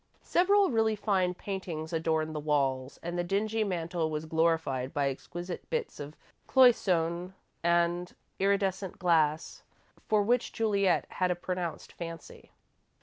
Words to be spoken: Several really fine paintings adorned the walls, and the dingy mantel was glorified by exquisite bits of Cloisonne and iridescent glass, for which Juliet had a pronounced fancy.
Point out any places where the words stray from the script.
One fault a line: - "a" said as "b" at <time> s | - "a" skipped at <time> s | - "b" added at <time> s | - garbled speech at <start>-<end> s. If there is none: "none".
none